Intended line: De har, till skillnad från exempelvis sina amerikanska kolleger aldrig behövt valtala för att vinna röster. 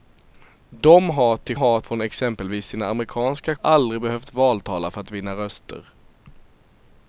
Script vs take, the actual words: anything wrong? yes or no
yes